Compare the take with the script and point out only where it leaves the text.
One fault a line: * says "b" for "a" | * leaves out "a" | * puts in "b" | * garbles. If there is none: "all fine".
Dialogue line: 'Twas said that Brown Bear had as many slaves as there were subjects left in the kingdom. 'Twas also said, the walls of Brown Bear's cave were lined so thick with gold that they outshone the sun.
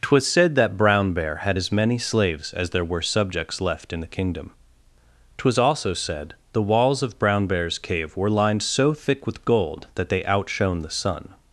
all fine